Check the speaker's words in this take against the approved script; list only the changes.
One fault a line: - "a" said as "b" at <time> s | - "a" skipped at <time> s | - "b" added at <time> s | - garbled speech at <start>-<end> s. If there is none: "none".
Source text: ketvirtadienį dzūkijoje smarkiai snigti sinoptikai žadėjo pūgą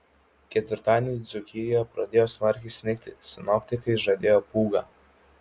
- "pradėjo" added at 2.0 s